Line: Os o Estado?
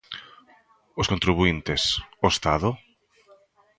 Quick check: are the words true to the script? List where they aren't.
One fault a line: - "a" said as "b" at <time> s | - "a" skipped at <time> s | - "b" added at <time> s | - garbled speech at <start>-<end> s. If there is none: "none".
- "contribuíntes" added at 1.1 s